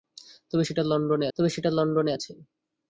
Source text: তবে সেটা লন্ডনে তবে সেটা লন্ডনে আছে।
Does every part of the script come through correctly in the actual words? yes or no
yes